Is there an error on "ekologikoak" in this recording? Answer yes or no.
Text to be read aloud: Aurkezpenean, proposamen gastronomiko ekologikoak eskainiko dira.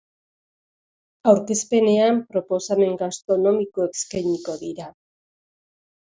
yes